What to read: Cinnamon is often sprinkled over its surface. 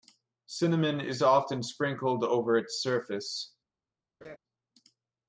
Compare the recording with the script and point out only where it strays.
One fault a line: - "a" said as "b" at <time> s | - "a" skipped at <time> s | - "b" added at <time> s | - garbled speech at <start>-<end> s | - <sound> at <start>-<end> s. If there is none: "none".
- laugh at 4.2-4.4 s